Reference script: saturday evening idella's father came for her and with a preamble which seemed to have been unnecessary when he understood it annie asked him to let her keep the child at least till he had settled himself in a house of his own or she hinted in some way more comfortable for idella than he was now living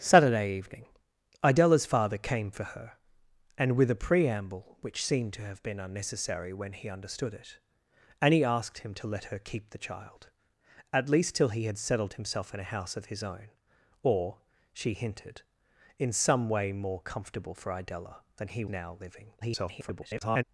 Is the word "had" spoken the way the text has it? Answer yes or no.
yes